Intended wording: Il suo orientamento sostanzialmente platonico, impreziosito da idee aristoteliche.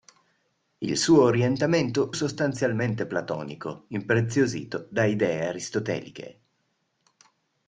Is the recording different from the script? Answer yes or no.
no